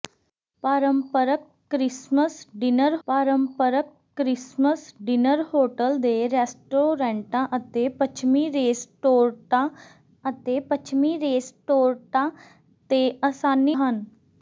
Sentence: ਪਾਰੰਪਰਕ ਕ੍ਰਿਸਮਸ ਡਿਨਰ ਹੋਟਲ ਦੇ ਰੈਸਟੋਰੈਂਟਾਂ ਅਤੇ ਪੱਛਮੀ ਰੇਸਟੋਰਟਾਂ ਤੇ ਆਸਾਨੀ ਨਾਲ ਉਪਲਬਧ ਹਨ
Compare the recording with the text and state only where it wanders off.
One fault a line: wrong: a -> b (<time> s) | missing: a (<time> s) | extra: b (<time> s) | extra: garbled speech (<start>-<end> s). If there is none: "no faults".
extra: ਪਾਰੰਪਰਕ ਕ੍ਰਿਸਮਸ ਡਿਨਰ (3.1 s)
extra: ਅਤੇ ਪੱਛਮੀ ਰੇਸਟੋਰਟਾਂ (10.3 s)
missing: ਨਾਲ ਉਪਲਬਧ (13.8 s)